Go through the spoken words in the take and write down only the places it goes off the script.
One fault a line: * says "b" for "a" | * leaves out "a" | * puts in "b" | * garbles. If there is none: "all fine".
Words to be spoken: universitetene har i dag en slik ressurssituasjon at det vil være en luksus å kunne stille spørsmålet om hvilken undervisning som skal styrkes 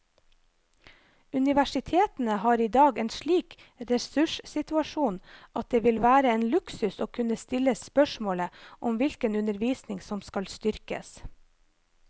all fine